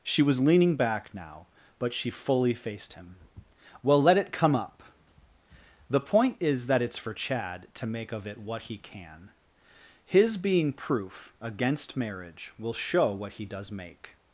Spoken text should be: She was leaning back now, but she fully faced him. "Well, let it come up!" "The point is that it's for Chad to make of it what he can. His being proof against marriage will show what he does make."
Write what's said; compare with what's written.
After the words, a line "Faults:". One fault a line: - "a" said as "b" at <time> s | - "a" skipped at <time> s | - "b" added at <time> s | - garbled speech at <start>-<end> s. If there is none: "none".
She was leaning back now, but she fully faced him. "Well, let it come up!" "The point is that it's for Chad to make of it what he can. His being proof against marriage will show what he does make."
Faults:
none